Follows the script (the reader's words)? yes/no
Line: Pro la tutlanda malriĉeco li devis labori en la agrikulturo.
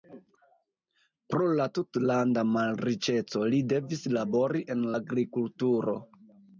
no